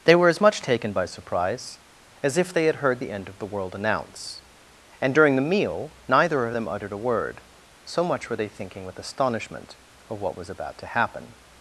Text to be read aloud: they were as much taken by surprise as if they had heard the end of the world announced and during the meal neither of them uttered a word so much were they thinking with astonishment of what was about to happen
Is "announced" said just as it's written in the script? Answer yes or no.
no